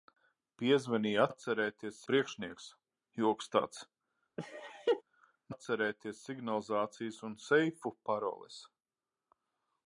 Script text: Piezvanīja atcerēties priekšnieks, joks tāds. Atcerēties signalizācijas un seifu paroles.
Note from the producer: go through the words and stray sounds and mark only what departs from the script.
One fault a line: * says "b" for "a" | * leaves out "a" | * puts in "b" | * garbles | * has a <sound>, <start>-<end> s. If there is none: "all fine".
* has a laugh, 4.4-5.0 s